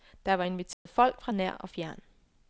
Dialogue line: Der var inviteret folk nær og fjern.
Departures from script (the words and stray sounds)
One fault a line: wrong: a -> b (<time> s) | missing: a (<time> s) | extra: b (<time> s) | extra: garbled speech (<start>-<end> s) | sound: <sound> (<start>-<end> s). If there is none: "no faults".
sound: dropout (0.7-0.9 s)
extra: fra (1.2 s)